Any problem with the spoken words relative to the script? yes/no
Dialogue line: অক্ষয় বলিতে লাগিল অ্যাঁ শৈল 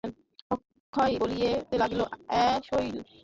no